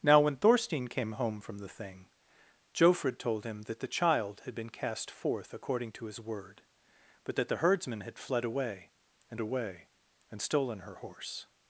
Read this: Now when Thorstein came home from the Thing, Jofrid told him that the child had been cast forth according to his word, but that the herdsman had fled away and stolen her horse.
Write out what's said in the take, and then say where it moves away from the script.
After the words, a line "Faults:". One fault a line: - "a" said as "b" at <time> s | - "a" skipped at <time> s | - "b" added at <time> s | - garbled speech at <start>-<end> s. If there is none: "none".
Now when Thorstein came home from the Thing, Jofrid told him that the child had been cast forth according to his word, but that the herdsman had fled away and away and stolen her horse.
Faults:
- "away and" added at 9.4 s